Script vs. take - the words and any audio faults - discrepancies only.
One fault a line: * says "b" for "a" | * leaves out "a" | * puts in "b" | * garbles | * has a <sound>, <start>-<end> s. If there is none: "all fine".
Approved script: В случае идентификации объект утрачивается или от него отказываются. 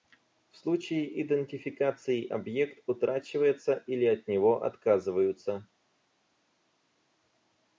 all fine